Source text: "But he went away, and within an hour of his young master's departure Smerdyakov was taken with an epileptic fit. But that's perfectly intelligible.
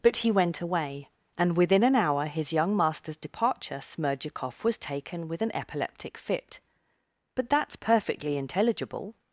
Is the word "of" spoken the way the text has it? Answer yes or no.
no